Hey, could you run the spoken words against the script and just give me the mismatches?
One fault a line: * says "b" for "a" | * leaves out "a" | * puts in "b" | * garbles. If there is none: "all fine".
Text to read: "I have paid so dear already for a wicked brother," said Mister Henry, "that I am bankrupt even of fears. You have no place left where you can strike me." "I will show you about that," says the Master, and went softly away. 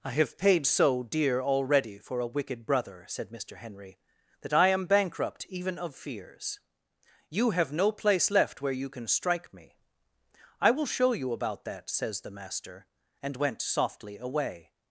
all fine